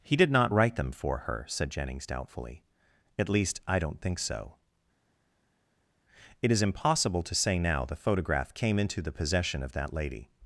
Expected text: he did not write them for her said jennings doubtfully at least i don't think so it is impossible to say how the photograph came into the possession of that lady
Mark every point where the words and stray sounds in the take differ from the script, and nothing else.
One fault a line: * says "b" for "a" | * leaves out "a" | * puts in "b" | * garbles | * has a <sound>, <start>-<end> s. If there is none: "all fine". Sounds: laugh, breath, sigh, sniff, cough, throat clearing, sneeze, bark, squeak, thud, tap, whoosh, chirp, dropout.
* says "now" for "how"